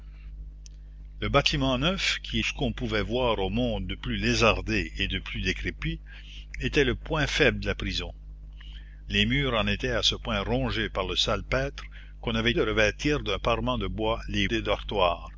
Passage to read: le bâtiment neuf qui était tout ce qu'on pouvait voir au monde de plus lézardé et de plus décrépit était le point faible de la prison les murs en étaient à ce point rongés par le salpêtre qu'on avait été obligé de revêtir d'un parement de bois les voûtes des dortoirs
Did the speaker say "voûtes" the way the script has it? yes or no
no